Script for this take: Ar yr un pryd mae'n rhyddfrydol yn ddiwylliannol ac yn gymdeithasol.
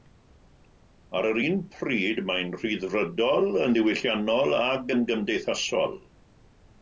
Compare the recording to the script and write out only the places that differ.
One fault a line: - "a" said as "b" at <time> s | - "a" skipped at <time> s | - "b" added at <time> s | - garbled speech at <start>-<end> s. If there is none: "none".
none